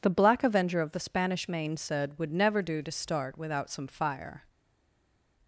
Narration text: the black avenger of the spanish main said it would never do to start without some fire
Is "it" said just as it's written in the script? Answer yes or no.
no